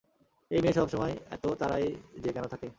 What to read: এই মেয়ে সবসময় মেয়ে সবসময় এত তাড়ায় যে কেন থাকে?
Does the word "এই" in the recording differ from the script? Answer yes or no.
no